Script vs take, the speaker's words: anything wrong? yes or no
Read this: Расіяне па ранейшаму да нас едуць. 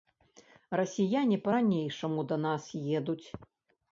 no